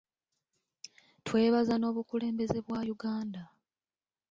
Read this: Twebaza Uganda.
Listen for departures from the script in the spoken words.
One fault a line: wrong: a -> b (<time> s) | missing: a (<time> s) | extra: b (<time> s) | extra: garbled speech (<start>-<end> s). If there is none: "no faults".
extra: n'Obukulembeze bwa (1.8 s)